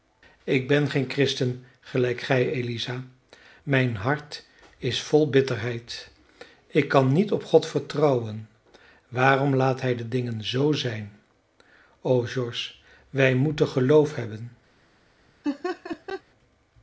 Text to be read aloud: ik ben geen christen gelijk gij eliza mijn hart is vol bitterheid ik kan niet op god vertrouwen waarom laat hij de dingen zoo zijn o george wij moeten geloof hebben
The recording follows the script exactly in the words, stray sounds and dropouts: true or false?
false